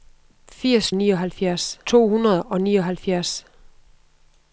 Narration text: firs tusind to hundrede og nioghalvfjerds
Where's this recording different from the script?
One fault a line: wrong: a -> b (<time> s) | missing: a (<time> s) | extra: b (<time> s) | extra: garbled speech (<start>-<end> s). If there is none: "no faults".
wrong: tusind -> nioghalvfjerds (0.9 s)